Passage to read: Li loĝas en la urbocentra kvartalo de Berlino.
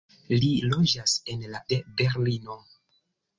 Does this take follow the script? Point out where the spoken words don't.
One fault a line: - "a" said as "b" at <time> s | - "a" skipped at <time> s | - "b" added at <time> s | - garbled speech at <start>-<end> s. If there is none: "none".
- "urbocentra kvartalo" skipped at 1.6 s